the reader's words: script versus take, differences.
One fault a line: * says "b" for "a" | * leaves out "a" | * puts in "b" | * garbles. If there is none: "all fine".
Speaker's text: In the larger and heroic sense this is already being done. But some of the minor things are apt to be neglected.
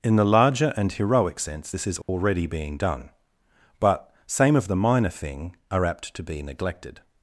* says "same" for "some"
* says "thing" for "things"